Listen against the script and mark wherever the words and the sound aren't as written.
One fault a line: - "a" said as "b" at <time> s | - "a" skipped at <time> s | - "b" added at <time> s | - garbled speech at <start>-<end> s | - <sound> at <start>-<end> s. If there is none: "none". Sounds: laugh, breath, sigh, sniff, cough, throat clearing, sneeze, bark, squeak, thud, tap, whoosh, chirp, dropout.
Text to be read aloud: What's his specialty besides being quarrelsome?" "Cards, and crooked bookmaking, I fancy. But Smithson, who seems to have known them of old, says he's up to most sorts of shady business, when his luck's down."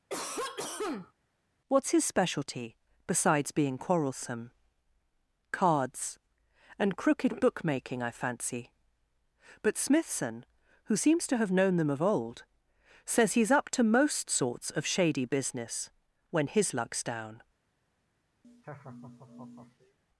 - cough at 0.1-1.1 s
- laugh at 18.4-20.0 s